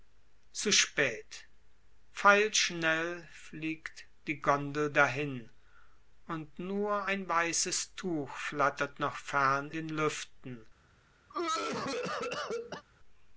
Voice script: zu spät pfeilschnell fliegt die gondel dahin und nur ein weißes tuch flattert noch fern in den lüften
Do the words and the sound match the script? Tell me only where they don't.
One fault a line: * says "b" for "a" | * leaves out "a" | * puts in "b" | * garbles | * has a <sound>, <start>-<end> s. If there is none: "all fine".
* leaves out "in"
* has a cough, 11.3-12.8 s